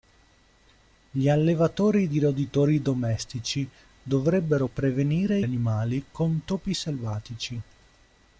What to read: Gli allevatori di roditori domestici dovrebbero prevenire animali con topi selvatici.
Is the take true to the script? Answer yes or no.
yes